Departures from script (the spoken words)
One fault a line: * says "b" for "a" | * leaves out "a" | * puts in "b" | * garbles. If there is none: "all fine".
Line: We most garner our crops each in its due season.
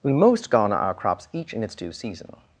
all fine